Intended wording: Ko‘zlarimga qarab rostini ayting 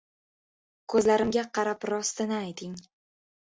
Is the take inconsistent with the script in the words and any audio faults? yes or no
no